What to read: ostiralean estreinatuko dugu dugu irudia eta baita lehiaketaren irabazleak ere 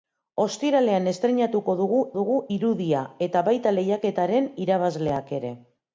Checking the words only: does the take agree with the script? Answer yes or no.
yes